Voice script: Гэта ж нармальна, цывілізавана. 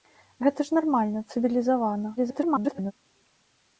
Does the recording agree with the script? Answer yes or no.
no